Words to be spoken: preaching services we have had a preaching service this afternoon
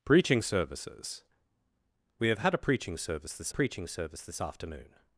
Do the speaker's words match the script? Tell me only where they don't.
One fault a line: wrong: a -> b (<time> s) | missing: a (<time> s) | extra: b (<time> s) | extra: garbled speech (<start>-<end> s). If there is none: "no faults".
extra: preaching service this (3.5 s)